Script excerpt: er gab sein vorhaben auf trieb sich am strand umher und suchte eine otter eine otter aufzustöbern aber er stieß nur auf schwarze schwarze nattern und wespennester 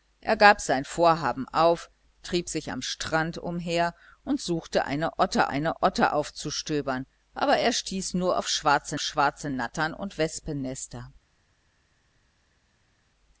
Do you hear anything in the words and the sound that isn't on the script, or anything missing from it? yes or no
no